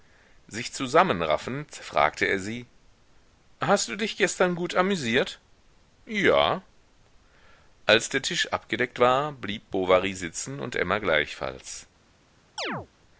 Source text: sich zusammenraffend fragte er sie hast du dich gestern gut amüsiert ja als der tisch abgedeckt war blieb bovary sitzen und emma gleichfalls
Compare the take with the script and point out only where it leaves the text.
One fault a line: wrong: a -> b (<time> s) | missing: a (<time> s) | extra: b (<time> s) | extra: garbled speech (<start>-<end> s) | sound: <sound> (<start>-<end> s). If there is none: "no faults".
sound: chirp (12.6-12.9 s)